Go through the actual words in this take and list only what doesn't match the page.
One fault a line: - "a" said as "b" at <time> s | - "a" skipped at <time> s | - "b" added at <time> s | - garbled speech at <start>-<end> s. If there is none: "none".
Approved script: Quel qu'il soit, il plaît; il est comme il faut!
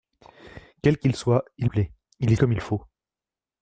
none